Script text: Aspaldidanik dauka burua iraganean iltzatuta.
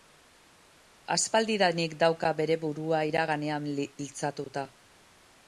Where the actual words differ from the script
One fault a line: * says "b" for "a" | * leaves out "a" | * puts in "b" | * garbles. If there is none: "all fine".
* puts in "bere"